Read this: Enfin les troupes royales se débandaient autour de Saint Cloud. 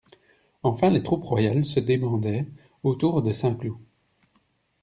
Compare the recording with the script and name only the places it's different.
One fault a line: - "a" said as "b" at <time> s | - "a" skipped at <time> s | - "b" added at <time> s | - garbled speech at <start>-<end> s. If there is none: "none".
none